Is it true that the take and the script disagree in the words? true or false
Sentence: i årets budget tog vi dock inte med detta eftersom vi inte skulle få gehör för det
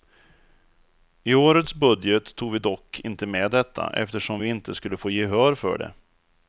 false